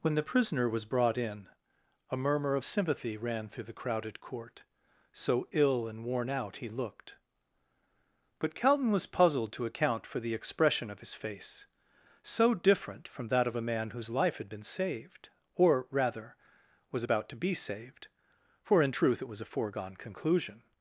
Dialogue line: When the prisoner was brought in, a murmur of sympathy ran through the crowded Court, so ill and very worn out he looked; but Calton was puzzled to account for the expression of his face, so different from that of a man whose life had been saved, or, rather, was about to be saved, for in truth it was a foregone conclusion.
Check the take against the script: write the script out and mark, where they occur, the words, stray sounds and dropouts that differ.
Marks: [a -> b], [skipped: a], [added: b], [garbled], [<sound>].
When the prisoner was brought in, a murmur of sympathy ran through the crowded Court, so ill and [skipped: very] worn out he looked; but Calton was puzzled to account for the expression of his face, so different from that of a man whose life had been saved, or, rather, was about to be saved, for in truth it was a foregone conclusion.